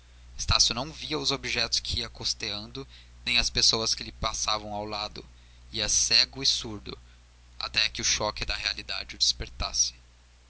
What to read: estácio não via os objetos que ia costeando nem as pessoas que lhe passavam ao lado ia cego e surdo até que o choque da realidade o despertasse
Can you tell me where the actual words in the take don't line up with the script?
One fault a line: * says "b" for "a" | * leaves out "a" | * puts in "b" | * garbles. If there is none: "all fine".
all fine